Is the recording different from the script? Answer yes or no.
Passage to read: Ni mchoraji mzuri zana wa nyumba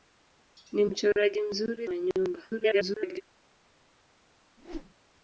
yes